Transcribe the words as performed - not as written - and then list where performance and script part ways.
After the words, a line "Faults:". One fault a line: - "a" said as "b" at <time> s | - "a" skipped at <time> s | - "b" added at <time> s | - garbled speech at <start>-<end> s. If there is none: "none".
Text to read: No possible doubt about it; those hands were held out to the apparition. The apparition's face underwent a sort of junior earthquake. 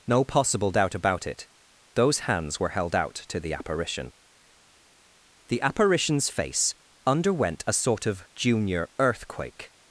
No possible doubt about it; those hands were held out to the apparition. The apparition's face underwent a sort of junior earthquake.
Faults:
none